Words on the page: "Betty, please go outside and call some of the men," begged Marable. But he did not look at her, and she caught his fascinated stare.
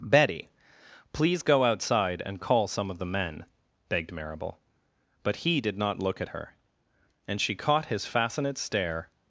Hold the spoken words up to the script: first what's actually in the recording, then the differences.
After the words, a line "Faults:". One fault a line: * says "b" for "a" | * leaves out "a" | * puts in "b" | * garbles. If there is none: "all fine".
"Betty, please go outside and call some of the men," begged Marable. But he did not look at her, and she caught his fascinate stare.
Faults:
* says "fascinate" for "fascinated"